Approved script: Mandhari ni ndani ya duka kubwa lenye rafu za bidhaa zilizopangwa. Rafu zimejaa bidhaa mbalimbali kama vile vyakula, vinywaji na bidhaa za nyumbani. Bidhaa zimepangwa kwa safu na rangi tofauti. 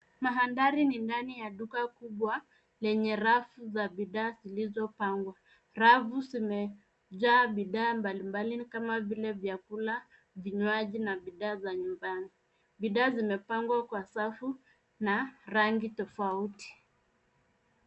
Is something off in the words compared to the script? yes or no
no